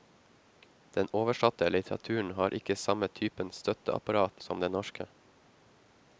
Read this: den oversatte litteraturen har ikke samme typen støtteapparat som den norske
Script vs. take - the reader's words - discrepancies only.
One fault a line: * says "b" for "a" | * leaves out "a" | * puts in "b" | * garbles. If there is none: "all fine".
all fine